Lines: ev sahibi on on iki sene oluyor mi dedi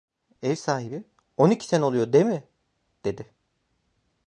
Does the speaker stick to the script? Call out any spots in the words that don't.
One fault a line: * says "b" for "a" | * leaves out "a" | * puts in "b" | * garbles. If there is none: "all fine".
* leaves out "on"
* puts in "değil"